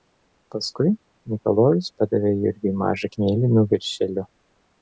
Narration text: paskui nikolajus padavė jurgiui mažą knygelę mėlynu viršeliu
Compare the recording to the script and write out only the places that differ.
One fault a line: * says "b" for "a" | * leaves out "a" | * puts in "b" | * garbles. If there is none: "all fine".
* leaves out "knygelę"